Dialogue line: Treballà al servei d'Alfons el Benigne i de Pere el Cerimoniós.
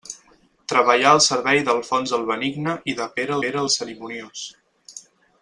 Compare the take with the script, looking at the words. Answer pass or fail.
fail